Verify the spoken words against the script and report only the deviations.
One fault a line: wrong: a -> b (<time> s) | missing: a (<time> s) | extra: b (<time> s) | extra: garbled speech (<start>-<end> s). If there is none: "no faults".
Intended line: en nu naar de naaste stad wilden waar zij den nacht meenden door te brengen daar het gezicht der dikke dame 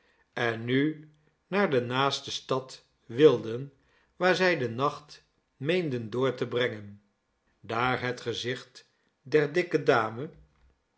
no faults